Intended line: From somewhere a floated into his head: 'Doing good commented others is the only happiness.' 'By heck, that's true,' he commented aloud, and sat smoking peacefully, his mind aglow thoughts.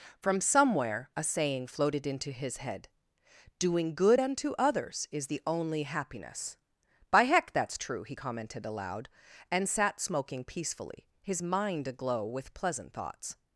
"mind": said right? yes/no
yes